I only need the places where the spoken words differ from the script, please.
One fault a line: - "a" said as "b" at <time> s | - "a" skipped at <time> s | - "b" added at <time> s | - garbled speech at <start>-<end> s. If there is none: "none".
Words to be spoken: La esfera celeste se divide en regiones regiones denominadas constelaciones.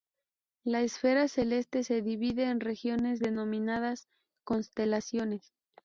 - "regiones" skipped at 3.2 s